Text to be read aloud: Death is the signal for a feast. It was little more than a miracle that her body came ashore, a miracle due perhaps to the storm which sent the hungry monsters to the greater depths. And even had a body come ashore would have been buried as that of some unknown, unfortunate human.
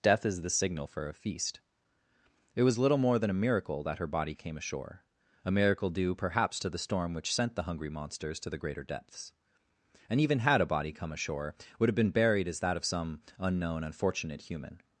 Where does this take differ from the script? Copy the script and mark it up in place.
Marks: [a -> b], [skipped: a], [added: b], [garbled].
Death is the signal for a feast. It was little more than a miracle that her body came ashore, a miracle due perhaps to the storm which sent the hungry monsters to the greater depths. And even had a body come ashore would have been buried as that of some unknown, unfortunate human.